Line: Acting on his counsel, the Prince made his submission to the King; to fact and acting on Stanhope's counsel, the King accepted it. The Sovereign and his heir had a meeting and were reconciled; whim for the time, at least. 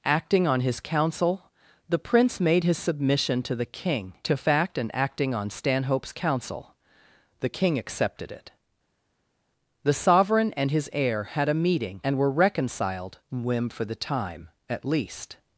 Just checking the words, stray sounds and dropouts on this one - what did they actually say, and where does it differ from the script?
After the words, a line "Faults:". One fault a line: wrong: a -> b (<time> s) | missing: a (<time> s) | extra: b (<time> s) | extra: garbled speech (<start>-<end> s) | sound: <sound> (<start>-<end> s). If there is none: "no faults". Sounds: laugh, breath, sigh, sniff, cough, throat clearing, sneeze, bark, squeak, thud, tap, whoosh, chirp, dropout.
Acting on his counsel, the Prince made his submission to the King; to fact and acting on Stanhope's counsel, the King accepted it. The Sovereign and his heir had a meeting and were reconciled; whim for the time, at least.
Faults:
no faults